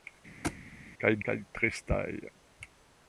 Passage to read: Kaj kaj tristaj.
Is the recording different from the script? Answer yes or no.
no